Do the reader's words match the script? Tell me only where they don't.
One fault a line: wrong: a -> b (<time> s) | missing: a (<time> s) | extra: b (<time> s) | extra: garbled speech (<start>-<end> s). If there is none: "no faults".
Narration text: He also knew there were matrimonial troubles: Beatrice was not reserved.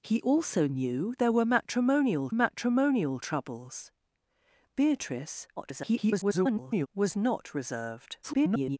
extra: matrimonial (2.3 s)
extra: garbled speech (5.6-6.9 s)
extra: garbled speech (8.2-8.8 s)